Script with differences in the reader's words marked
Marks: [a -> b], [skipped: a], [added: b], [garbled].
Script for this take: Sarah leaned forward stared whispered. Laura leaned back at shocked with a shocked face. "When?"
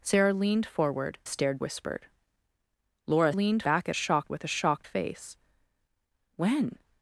Sarah leaned forward stared whispered. Laura leaned back at shocked with a shocked face. "When?"